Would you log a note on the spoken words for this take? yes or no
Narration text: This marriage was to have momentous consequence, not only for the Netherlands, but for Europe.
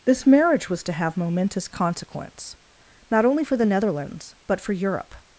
no